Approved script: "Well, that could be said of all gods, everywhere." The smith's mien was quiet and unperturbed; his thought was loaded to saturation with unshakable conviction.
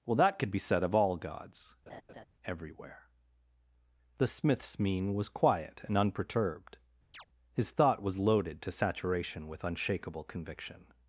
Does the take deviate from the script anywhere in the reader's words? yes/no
no